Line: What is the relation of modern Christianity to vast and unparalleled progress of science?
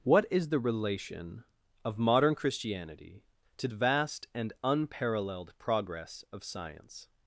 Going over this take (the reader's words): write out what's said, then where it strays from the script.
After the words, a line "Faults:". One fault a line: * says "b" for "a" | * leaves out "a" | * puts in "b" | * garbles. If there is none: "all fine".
What is the relation of modern Christianity to vast and unparalleled progress of science?
Faults:
all fine